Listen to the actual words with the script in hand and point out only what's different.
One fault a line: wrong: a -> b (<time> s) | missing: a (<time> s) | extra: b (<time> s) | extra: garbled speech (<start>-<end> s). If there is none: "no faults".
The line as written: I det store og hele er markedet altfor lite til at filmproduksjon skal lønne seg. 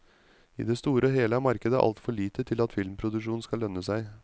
no faults